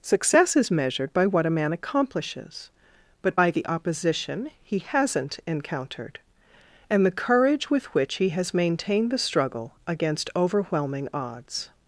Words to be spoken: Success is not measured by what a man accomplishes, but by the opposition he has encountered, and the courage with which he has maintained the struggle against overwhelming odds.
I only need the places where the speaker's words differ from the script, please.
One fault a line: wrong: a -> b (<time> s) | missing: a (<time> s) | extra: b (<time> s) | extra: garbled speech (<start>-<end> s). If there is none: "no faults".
missing: not (0.7 s)
wrong: has -> hasn't (4.8 s)